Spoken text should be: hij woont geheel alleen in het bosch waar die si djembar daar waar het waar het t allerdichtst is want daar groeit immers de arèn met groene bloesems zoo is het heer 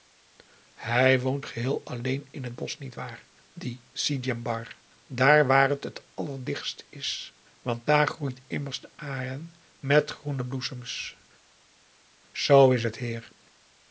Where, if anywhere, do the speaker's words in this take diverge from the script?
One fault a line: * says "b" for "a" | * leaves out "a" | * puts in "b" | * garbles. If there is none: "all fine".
* puts in "niet"
* leaves out "waar het"